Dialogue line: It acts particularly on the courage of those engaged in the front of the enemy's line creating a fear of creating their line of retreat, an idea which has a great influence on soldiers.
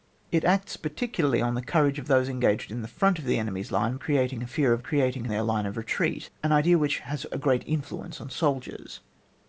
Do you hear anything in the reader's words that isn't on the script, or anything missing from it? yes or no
no